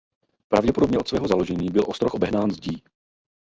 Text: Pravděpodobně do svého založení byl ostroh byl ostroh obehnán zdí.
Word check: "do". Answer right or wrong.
wrong